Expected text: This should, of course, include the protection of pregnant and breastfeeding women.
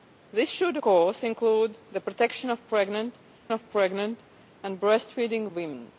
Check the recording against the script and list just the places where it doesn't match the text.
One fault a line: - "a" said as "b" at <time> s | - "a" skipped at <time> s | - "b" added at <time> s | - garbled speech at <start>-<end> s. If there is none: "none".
- "of" skipped at 0.8 s
- "of pregnant" added at 3.5 s